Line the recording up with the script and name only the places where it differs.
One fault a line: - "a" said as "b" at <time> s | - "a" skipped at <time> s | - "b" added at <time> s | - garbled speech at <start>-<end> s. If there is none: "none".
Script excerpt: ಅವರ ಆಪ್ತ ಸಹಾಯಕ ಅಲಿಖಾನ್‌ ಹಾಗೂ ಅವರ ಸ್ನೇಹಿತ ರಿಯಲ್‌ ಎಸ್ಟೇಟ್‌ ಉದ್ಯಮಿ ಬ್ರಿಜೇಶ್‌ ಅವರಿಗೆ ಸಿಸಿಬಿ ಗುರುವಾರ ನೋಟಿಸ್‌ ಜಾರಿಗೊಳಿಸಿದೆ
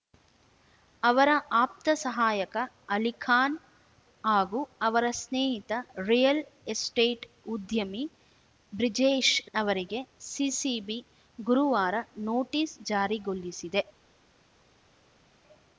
none